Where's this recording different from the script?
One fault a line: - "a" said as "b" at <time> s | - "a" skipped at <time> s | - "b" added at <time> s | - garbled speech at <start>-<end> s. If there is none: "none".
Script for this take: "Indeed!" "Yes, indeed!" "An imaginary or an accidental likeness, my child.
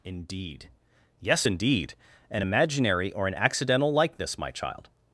none